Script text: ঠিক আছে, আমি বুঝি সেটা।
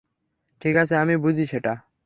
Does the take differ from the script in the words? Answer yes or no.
no